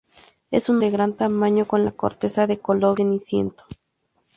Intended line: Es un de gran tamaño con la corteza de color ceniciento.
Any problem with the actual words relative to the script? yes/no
no